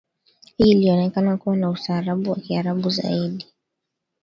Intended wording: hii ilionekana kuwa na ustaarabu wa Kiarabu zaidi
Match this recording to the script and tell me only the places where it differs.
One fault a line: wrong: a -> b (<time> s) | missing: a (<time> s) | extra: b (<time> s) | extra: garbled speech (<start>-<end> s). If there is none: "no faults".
no faults